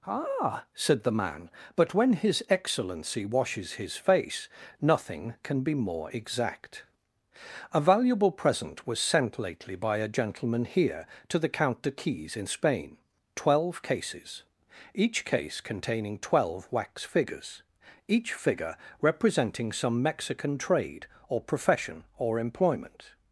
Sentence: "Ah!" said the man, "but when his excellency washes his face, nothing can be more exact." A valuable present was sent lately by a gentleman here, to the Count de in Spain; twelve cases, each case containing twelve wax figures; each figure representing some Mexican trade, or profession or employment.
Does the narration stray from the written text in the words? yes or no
yes